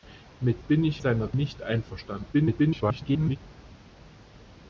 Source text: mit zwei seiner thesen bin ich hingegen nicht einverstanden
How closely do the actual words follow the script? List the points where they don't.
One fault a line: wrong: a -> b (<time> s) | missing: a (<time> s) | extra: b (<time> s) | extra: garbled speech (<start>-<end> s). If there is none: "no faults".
missing: zwei seiner thesen (0.6 s)
wrong: hingegen -> seiner (1.0 s)
extra: garbled speech (2.3-3.4 s)